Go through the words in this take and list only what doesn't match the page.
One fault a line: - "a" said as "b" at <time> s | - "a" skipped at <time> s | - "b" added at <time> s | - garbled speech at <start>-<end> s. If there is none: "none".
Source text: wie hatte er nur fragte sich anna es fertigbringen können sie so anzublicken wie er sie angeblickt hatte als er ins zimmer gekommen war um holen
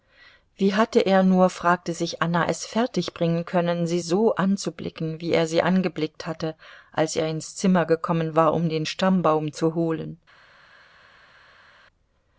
- "den stammbaum zu" added at 8.7 s